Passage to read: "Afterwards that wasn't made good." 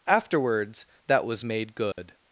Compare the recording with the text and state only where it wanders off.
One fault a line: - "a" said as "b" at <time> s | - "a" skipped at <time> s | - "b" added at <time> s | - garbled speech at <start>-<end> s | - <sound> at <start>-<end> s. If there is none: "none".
- "wasn't" said as "was" at 1.3 s
- dropout at 1.9-2.0 s